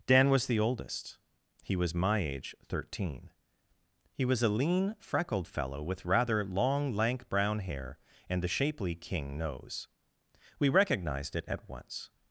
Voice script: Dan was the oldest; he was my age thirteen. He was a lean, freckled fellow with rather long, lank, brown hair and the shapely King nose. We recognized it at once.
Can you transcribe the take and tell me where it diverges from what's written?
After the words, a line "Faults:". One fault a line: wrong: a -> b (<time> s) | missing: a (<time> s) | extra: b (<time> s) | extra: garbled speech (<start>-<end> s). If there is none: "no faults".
Dan was the oldest; he was my age thirteen. He was a lean, freckled fellow with rather long, lank, brown hair and the shapely King nose. We recognized it at once.
Faults:
no faults